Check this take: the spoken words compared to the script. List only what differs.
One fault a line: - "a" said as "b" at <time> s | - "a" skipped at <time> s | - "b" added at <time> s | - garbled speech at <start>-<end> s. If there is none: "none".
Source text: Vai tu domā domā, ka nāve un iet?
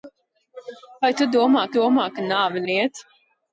none